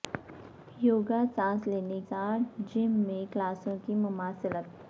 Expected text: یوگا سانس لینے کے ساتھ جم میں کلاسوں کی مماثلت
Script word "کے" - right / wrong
wrong